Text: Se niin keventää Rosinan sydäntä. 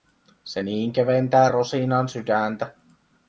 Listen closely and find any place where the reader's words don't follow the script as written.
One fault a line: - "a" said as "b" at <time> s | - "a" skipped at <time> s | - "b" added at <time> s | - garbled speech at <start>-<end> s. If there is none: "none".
none